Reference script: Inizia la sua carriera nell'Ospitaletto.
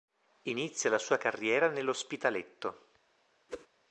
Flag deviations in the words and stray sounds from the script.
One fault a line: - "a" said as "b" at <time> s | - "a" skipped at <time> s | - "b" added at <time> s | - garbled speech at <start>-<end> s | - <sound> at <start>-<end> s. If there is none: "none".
- whoosh at 3.5-3.7 s